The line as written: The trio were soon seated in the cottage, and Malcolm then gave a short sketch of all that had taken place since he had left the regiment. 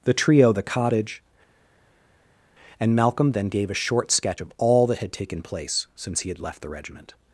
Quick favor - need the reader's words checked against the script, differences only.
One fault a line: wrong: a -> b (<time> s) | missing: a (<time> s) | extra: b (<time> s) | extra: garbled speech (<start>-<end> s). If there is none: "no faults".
missing: were soon seated in (0.5 s)